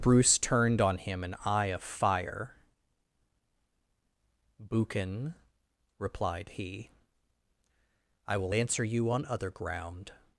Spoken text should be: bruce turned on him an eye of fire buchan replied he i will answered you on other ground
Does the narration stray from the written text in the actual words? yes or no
yes